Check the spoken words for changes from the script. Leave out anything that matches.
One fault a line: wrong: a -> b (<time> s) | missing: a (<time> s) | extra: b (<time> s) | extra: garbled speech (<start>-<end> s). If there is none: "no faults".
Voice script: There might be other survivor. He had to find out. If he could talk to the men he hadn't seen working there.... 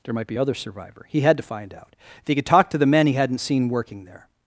no faults